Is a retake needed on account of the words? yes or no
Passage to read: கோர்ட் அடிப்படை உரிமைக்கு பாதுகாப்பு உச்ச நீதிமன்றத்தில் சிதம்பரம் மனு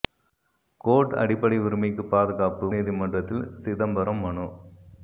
yes